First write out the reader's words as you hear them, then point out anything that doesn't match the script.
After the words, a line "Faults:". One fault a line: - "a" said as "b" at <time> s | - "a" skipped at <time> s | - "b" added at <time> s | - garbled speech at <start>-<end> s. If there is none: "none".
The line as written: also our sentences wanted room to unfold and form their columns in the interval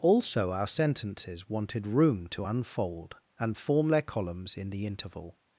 also our sentences wanted room to unfold and form their columns in the interval
Faults:
none